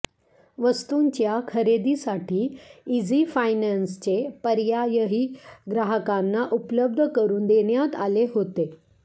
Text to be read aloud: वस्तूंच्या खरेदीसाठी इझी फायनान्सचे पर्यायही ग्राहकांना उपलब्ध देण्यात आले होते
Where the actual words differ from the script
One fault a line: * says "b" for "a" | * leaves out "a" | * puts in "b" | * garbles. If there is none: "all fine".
* puts in "करून"